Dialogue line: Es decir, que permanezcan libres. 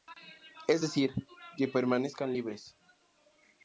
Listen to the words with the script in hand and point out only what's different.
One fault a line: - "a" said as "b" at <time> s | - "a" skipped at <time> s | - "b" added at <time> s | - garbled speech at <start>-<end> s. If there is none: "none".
none